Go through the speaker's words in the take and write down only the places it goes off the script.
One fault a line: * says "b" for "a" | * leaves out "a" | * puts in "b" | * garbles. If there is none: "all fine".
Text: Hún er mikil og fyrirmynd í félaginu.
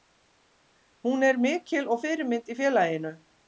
all fine